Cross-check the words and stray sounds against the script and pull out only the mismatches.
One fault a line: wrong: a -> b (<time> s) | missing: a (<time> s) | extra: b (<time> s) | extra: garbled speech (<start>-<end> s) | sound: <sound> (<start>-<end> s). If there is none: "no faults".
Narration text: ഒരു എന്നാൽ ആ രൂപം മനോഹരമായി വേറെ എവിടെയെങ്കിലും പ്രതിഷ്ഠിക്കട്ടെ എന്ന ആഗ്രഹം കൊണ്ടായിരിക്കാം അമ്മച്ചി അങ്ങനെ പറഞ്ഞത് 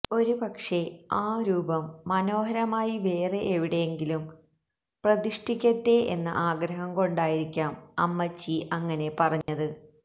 wrong: എന്നാൽ -> പക്ഷേ (0.3 s)
sound: dropout (9.4-9.5 s)